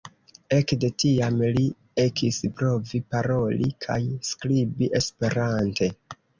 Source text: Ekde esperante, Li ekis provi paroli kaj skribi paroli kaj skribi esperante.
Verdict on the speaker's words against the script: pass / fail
fail